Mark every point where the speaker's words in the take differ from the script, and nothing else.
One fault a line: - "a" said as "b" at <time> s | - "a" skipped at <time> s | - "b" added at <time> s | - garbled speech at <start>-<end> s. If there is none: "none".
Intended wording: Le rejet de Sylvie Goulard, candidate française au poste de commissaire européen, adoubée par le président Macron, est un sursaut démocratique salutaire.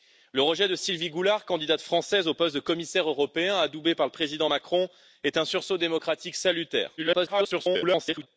- garbled speech at 7.0-8.3 s